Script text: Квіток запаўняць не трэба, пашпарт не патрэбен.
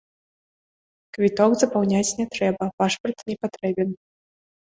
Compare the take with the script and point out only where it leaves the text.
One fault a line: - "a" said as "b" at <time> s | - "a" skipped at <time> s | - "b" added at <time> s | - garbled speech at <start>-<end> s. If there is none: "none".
none